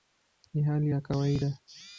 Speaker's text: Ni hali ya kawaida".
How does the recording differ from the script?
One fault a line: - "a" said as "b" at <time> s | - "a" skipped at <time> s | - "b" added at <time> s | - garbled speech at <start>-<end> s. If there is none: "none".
none